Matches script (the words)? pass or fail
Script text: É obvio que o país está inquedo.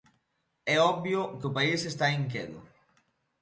pass